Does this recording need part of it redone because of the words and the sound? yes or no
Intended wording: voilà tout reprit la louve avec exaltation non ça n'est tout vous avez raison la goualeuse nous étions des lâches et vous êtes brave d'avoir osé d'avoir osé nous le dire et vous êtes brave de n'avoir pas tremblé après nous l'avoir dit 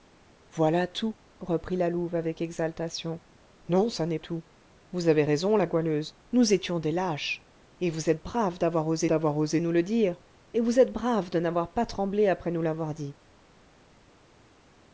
no